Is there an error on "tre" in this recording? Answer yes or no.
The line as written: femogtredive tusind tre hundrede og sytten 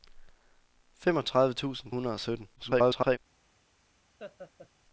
yes